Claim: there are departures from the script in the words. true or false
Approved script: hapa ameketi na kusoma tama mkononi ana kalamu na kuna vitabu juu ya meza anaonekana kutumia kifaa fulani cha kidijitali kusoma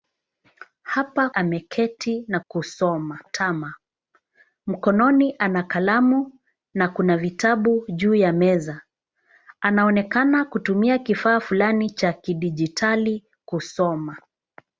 false